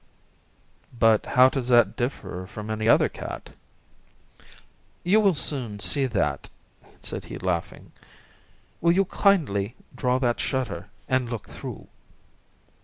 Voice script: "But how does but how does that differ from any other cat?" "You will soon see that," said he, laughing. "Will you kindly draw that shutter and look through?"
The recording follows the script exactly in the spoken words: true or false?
false